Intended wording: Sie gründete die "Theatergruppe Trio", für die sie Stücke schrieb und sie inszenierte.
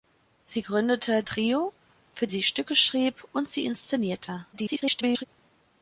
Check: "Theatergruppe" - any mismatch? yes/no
yes